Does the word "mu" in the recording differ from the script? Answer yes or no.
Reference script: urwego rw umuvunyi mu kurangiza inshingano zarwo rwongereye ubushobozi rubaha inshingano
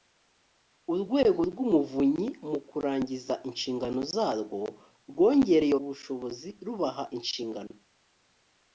no